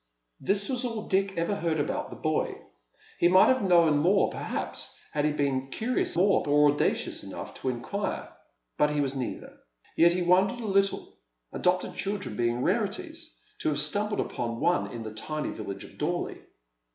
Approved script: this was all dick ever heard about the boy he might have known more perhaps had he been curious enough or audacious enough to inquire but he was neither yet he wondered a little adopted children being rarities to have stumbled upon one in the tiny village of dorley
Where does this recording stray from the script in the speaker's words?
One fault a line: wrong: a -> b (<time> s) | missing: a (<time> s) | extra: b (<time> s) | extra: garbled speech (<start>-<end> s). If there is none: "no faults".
wrong: enough -> more (6.1 s)